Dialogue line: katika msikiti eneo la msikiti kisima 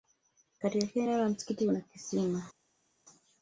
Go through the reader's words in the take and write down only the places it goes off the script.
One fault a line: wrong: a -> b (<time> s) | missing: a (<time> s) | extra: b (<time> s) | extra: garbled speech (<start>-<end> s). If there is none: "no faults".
wrong: msikiti -> kila (0.9 s)
extra: kuna (1.7 s)